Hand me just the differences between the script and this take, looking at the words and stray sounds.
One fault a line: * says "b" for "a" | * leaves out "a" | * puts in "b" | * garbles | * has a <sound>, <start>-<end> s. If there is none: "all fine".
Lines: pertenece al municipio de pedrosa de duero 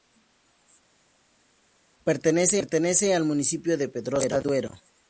* leaves out "de"